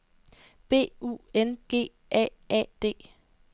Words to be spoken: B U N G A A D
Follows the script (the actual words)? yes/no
yes